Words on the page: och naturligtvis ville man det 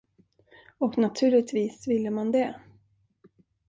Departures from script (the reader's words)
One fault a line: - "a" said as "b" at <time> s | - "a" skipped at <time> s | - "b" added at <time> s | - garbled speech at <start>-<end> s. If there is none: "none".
none